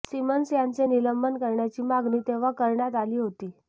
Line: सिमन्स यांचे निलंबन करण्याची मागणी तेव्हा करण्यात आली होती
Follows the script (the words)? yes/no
yes